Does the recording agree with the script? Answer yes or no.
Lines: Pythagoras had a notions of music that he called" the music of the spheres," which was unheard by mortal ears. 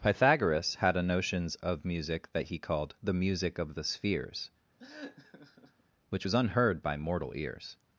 yes